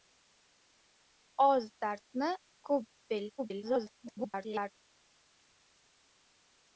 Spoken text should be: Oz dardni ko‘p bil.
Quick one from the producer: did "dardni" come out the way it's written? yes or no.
yes